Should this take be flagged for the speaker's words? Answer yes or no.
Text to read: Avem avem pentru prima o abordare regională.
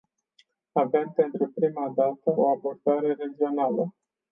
yes